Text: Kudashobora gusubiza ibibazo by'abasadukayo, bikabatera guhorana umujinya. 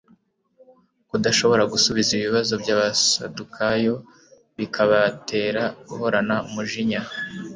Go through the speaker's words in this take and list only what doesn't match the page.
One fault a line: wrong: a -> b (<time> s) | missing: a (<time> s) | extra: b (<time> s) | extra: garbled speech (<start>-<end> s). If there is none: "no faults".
no faults